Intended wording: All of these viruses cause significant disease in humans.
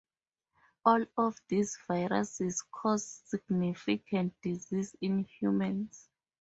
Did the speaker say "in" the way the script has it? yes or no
yes